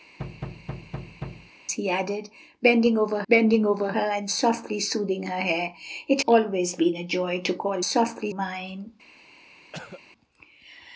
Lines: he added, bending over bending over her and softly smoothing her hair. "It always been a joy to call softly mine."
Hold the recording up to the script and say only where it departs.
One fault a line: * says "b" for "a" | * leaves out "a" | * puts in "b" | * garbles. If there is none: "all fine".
all fine